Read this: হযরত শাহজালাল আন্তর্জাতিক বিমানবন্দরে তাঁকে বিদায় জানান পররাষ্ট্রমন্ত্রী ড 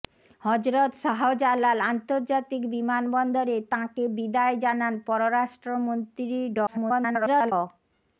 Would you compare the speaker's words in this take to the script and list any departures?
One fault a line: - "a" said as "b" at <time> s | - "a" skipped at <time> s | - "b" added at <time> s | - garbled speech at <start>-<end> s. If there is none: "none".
- garbled speech at 6.7-7.5 s